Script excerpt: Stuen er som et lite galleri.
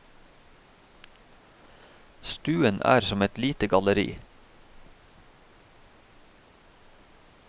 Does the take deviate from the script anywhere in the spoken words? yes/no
no